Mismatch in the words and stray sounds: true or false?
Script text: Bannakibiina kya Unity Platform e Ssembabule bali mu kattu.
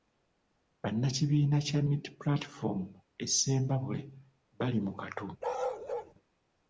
true